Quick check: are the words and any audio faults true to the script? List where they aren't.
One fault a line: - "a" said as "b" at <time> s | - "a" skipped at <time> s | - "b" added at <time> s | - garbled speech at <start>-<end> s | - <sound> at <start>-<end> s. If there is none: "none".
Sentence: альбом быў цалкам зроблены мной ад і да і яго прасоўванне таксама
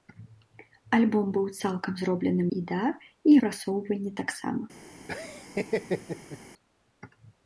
- "мной ад" skipped at 2.4 s
- "яго" skipped at 3.3 s
- laugh at 5.1-6.4 s